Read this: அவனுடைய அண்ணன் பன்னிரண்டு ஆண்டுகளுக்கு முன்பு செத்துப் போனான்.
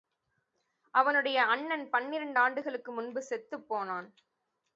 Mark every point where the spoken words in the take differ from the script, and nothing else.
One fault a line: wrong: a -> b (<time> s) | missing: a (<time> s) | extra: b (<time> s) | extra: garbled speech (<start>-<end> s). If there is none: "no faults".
no faults